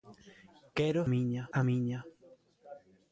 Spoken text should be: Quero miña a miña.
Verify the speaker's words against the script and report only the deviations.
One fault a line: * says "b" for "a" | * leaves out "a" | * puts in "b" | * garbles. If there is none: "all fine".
all fine